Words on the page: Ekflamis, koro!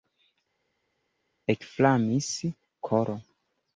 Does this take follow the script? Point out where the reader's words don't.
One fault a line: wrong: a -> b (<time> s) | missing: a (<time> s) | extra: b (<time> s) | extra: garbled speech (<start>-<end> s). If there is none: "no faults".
no faults